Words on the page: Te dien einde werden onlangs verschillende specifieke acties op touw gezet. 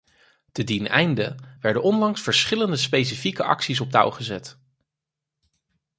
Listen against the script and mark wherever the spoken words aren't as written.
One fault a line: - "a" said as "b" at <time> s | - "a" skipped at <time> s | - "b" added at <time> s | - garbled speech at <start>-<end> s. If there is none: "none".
none